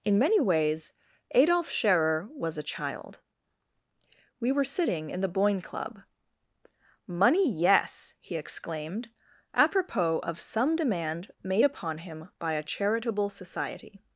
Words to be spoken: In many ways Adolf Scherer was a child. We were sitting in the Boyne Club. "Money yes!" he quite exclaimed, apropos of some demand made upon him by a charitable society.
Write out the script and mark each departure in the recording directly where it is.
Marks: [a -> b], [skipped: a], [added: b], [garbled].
In many ways Adolf Scherer was a child. We were sitting in the Boyne Club. "Money yes!" he [skipped: quite] exclaimed, apropos of some demand made upon him by a charitable society.